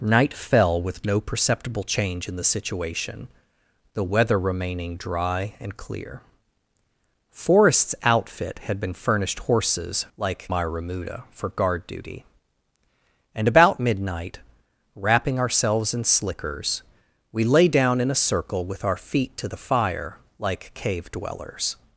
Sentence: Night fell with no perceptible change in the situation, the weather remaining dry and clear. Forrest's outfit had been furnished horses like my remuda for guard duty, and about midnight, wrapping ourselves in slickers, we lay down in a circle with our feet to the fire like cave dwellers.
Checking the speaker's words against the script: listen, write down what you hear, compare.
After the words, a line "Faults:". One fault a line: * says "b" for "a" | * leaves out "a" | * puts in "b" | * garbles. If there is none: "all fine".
Night fell with no perceptible change in the situation, the weather remaining dry and clear. Forrest's outfit had been furnished horses like my remuda for guard duty, and about midnight, wrapping ourselves in slickers, we lay down in a circle with our feet to the fire like cave dwellers.
Faults:
all fine